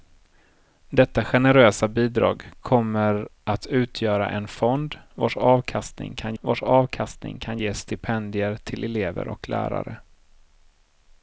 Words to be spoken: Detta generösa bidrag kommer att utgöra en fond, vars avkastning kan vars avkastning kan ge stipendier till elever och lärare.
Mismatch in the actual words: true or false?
false